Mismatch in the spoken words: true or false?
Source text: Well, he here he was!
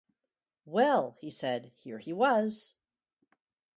true